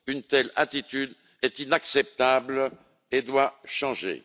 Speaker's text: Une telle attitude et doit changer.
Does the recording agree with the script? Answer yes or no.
no